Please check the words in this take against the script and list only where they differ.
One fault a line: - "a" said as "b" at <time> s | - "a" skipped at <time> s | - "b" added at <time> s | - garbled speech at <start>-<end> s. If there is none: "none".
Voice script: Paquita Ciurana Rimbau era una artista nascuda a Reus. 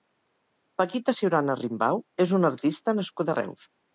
- "era" said as "és" at 2.3 s